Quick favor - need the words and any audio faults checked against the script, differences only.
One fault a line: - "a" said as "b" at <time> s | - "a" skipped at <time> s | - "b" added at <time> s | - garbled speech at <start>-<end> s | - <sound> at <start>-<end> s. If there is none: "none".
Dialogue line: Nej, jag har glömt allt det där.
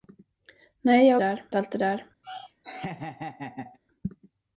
- "glömt" said as "där" at 1.2 s
- laugh at 2.2-3.8 s